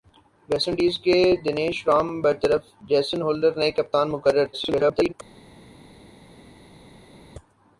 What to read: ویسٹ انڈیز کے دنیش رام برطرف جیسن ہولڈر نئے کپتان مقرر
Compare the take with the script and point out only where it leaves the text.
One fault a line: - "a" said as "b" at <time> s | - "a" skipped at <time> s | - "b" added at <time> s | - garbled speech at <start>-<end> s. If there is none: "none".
- garbled speech at 4.5-5.1 s